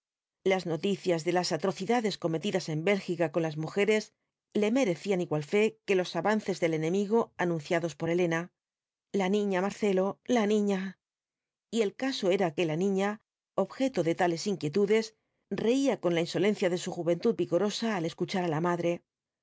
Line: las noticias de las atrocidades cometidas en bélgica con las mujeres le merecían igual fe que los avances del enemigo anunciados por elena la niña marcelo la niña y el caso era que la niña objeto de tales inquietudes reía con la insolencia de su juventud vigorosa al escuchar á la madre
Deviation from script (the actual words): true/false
false